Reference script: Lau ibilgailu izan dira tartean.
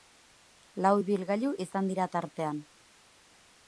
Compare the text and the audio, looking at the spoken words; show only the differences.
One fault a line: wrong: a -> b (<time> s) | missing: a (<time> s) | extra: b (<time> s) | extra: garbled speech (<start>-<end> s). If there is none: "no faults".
no faults